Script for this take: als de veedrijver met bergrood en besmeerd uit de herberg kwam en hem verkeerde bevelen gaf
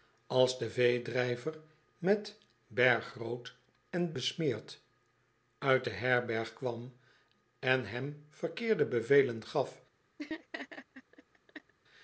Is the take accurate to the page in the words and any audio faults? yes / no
no